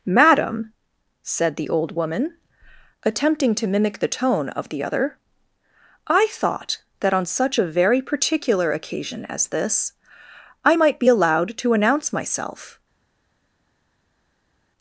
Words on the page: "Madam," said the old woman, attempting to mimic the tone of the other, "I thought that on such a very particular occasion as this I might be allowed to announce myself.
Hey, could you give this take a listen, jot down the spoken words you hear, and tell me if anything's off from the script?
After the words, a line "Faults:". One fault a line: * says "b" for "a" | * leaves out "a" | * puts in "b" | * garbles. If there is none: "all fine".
"Madam," said the old woman, attempting to mimic the tone of the other, "I thought that on such a very particular occasion as this I might be allowed to announce myself.
Faults:
all fine